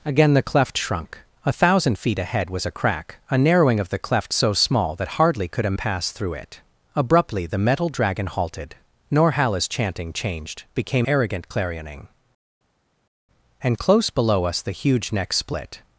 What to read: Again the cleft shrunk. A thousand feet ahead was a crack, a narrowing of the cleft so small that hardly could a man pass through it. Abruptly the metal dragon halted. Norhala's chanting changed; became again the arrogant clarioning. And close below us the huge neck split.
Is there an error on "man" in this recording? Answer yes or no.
yes